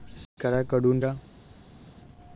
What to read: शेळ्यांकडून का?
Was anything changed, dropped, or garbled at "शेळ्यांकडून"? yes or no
no